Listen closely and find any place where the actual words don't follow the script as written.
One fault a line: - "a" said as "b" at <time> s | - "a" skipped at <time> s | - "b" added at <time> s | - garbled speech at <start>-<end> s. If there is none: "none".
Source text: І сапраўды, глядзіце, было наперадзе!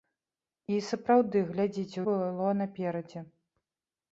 none